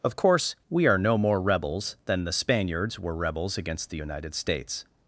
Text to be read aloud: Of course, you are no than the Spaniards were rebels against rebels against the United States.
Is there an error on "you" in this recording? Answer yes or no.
yes